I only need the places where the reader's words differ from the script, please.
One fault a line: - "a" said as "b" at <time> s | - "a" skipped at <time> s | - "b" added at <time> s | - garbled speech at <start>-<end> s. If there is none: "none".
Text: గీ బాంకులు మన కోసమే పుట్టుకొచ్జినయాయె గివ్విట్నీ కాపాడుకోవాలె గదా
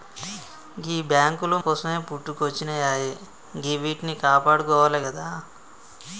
- "మన" skipped at 1.6 s